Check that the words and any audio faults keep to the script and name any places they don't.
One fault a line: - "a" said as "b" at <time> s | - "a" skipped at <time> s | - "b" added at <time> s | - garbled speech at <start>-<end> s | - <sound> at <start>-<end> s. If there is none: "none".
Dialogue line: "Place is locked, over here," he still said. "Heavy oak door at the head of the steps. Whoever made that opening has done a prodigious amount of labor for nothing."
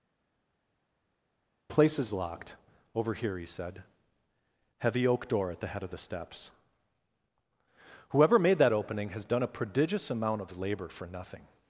- "still" skipped at 3.4 s